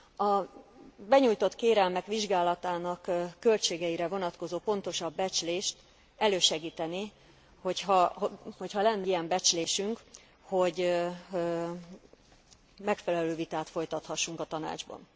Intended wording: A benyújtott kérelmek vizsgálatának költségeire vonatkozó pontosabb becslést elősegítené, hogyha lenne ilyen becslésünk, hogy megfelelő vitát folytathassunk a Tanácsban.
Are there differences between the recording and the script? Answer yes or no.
no